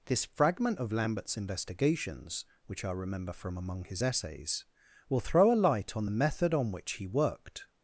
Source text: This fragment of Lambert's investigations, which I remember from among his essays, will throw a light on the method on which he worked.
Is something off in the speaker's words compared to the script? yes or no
no